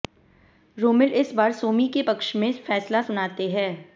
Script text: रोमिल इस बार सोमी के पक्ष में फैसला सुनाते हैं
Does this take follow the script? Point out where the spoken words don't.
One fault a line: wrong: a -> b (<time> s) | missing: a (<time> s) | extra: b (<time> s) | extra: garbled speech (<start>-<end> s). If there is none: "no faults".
no faults